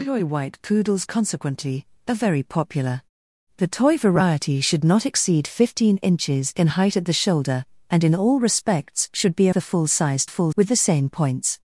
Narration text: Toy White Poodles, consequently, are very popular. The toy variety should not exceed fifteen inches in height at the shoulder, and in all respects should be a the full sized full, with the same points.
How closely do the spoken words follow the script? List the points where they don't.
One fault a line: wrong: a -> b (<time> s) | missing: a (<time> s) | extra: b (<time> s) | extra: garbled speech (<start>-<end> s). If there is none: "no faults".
no faults